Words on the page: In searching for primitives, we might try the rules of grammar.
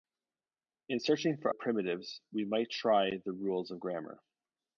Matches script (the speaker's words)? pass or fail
pass